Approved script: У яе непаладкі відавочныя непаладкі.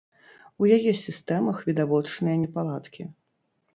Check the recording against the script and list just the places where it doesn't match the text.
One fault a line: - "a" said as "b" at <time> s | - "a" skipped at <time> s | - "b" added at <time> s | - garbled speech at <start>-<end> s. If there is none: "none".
- "непаладкі" said as "сістэмах" at 1.0 s